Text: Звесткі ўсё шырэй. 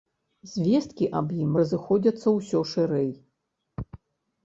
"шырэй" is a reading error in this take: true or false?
false